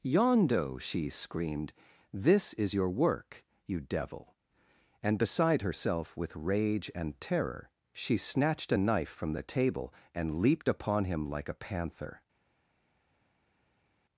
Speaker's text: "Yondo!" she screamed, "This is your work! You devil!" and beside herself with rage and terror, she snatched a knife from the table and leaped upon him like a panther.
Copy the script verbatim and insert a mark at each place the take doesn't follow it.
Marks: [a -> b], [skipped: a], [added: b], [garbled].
"Yondo!" she screamed, "This is your work! You devil!" and beside herself with rage and terror, she snatched a knife from the table and leaped upon him like a panther.